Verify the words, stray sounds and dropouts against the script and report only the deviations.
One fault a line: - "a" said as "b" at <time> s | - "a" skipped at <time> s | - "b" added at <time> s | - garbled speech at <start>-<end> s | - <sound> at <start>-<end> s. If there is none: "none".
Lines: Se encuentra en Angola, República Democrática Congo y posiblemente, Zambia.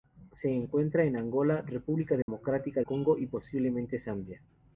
- dropout at 2.2-2.3 s